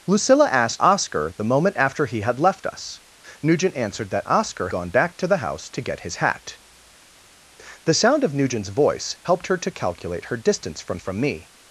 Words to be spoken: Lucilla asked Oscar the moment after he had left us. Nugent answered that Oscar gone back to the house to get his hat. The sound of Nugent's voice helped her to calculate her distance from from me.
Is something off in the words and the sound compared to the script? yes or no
no